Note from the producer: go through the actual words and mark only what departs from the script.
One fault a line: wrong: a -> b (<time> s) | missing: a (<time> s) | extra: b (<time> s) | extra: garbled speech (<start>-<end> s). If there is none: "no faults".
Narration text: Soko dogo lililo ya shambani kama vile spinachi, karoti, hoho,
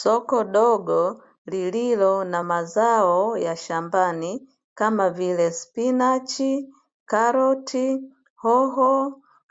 extra: na mazao (2.2 s)